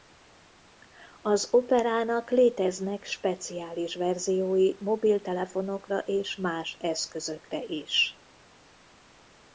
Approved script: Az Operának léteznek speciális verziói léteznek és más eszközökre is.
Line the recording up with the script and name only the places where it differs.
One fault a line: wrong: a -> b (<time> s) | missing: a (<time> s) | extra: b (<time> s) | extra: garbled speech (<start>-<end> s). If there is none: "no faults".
wrong: léteznek -> mobiltelefonokra (4.8 s)